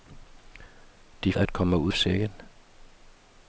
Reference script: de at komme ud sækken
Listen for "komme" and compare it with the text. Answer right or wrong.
right